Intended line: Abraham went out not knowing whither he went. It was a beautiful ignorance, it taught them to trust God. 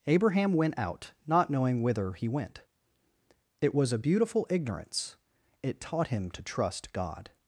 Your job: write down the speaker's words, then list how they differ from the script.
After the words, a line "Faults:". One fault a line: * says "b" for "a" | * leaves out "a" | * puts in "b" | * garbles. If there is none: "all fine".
Abraham went out not knowing whither he went. It was a beautiful ignorance, it taught him to trust God.
Faults:
* says "him" for "them"